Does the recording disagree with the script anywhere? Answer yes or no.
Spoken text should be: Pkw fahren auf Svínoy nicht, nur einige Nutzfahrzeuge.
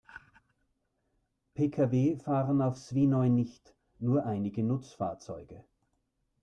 no